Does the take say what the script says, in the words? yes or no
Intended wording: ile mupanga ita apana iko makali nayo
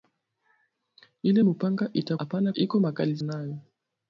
yes